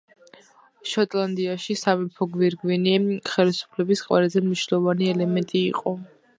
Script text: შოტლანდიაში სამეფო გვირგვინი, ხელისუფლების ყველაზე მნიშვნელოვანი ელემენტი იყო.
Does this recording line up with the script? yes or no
yes